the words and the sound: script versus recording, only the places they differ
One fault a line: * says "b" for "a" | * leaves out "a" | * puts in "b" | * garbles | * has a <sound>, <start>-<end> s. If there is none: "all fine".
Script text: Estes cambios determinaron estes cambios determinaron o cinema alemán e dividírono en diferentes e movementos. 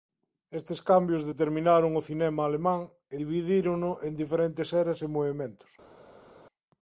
* leaves out "estes cambios determinaron"
* puts in "eras"